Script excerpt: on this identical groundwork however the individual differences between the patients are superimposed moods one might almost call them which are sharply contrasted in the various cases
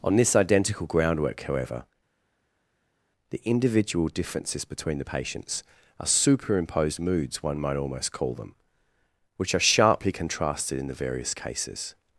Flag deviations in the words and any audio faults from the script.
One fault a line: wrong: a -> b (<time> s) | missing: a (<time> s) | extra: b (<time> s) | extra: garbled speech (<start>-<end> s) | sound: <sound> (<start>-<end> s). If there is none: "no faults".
no faults